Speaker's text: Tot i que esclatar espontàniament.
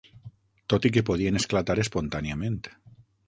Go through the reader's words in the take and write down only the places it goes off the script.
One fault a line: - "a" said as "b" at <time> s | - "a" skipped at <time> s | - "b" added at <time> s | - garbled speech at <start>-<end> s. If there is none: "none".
- "podien" added at 1.1 s